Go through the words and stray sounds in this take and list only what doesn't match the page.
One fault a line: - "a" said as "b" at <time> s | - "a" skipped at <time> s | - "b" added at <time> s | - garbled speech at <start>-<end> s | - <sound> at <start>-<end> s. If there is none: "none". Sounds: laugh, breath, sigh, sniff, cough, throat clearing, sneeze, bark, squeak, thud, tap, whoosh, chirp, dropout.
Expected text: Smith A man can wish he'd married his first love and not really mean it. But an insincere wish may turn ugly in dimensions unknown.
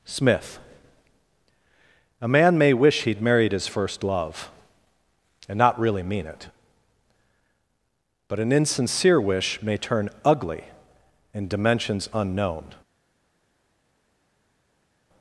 - "can" said as "may" at 2.6 s